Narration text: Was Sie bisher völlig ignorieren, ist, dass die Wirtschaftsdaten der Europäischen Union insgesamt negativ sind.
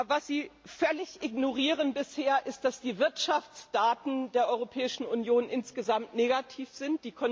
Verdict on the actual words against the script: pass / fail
pass